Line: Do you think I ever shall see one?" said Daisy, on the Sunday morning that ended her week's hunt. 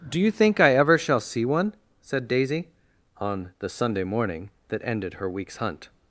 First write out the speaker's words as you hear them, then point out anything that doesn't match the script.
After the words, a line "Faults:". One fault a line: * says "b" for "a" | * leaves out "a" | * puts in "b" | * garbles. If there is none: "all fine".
Do you think I ever shall see one?" said Daisy, on the Sunday morning that ended her week's hunt.
Faults:
all fine